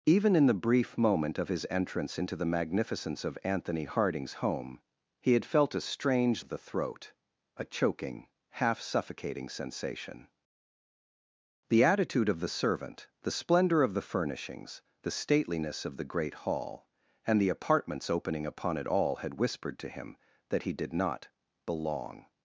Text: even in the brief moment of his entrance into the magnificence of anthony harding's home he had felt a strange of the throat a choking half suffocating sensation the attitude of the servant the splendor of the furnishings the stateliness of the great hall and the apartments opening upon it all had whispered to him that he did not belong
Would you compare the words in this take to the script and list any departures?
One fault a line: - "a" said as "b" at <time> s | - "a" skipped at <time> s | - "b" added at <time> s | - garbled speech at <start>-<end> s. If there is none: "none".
none